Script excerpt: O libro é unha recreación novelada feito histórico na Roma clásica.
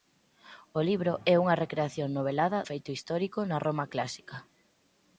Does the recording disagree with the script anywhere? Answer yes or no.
no